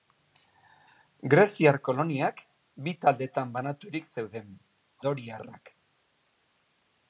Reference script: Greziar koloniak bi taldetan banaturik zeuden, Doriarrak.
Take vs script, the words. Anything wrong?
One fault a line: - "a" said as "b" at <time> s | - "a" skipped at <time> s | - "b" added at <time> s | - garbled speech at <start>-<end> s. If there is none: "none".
none